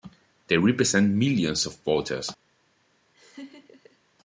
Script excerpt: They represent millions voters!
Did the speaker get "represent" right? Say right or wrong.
right